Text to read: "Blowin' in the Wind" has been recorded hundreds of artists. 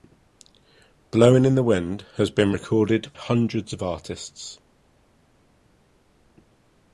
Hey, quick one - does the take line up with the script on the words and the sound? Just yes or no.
yes